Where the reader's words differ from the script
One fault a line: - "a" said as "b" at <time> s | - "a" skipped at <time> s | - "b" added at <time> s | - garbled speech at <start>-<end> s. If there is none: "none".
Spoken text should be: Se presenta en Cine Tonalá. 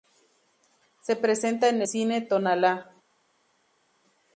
none